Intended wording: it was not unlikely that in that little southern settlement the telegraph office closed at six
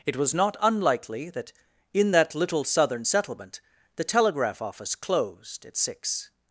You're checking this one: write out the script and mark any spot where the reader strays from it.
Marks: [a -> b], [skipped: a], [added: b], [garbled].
it was not unlikely that in that little southern settlement the telegraph office closed at six